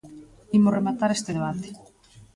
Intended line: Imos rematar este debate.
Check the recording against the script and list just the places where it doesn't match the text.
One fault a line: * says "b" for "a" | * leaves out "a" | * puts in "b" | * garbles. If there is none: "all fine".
all fine